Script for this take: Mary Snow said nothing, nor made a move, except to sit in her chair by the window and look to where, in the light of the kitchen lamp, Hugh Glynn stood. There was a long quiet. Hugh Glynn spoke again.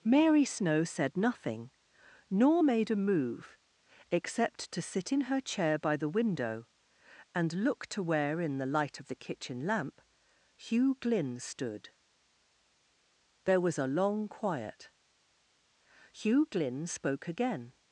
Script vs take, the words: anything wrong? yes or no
no